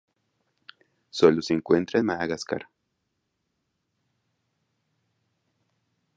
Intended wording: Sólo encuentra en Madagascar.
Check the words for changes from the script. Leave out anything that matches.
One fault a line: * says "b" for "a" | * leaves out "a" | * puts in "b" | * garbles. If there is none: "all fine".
* puts in "se"